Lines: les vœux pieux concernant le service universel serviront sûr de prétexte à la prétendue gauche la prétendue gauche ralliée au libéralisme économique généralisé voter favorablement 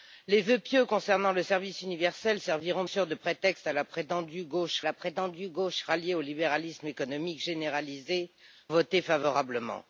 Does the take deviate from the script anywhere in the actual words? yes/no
no